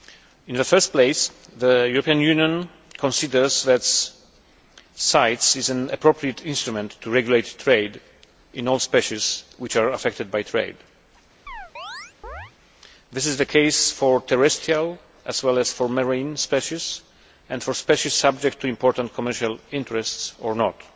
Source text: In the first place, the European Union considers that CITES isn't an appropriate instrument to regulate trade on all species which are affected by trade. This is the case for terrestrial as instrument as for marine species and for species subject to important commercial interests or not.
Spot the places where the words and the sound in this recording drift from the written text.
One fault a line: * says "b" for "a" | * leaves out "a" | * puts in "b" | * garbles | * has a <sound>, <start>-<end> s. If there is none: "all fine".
* says "is" for "isn't"
* says "in" for "on"
* has a chirp, 11.5-12.5 s
* says "well" for "instrument"